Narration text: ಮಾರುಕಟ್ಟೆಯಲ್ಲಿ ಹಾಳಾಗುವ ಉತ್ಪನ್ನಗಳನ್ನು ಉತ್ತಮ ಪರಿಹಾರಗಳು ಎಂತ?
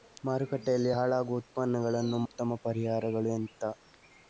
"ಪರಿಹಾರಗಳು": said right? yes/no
yes